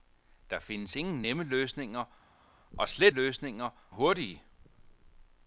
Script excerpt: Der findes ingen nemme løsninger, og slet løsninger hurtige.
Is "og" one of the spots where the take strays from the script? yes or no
no